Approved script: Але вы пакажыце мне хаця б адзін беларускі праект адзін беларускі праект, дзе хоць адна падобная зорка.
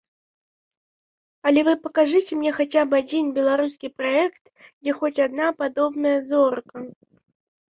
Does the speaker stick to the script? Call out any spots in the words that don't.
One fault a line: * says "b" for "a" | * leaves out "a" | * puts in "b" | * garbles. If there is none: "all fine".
* leaves out "адзін беларускі праект"